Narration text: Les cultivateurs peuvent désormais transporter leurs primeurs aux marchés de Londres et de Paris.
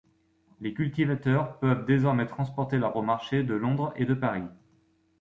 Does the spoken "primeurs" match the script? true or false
false